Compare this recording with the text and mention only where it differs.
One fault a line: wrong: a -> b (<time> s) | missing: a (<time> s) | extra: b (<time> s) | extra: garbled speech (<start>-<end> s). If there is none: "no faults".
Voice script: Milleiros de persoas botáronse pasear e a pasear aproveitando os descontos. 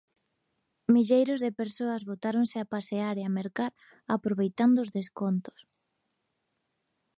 extra: a (2.6 s)
wrong: pasear -> mercar (3.4 s)